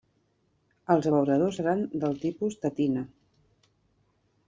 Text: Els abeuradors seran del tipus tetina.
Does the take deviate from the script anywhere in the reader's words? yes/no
no